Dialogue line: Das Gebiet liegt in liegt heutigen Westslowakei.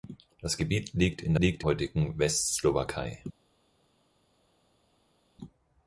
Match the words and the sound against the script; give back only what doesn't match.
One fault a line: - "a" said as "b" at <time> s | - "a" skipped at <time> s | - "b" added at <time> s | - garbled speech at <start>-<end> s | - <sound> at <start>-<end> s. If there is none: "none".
none